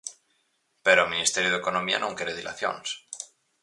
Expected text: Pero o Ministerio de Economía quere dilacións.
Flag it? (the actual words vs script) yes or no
yes